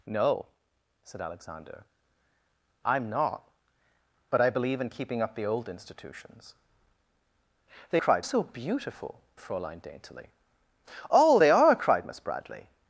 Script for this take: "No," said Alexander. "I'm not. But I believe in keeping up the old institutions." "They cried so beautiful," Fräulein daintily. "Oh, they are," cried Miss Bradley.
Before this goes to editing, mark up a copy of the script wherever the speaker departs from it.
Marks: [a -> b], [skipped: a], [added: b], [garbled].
"No," said Alexander. "I'm not. But I believe in keeping up the old institutions." "They cried so beautiful," Fräulein daintily. "Oh, they are," cried Miss Bradley.